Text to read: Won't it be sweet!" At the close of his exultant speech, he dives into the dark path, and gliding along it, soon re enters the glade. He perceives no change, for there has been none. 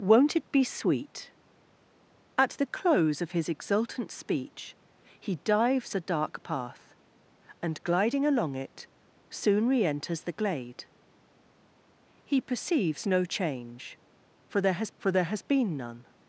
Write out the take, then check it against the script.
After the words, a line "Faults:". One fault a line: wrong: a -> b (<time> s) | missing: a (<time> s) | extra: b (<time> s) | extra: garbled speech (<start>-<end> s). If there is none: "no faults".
Won't it be sweet!" At the close of his exultant speech, he dives the dark path, and gliding along it, soon re enters the glade. He perceives no change, for there has for there has been none.
Faults:
missing: into (5.9 s)
extra: for there has (15.0 s)